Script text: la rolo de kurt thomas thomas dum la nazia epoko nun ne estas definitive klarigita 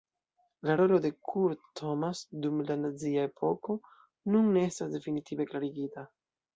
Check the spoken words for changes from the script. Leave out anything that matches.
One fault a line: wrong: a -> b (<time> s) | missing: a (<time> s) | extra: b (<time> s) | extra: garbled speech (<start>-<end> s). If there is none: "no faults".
missing: thomas (2.2 s)